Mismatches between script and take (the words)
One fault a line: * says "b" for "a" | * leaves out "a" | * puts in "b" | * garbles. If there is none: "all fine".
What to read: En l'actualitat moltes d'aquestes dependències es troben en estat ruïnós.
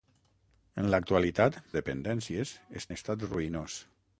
* leaves out "moltes d'aquestes"
* leaves out "troben"